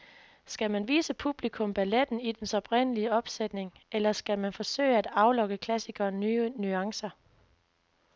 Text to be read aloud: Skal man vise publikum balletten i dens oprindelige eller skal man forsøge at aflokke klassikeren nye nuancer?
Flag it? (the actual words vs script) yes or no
yes